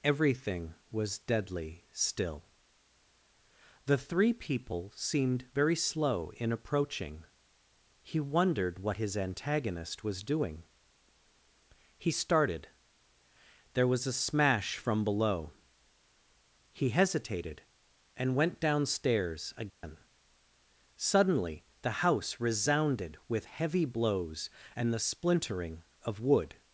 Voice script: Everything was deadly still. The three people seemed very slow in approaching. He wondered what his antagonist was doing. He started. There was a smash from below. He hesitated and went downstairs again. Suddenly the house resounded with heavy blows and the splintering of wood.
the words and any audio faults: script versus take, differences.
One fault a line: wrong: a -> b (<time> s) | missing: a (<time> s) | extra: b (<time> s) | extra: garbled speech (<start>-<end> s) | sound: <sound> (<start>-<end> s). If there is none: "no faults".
sound: dropout (19.7-19.8 s)